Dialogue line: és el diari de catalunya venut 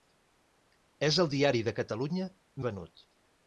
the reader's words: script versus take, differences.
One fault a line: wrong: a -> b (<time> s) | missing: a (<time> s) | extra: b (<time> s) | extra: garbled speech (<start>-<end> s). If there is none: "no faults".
no faults